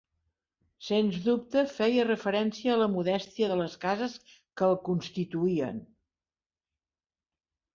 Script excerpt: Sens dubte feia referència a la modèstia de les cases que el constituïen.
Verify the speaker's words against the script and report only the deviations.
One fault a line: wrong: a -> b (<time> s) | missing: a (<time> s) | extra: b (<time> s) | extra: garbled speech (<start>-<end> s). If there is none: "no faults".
no faults